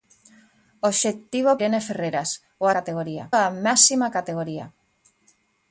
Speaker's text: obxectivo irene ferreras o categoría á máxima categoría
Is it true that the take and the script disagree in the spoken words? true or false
false